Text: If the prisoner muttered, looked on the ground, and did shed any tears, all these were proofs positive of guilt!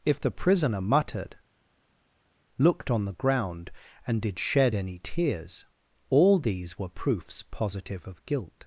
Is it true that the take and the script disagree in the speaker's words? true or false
false